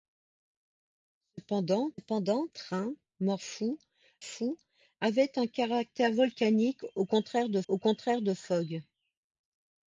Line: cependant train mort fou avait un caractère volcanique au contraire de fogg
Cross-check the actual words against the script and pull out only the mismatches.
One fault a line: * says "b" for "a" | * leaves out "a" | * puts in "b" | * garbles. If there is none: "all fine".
* puts in "cependant"
* puts in "fou"
* puts in "au contraire de"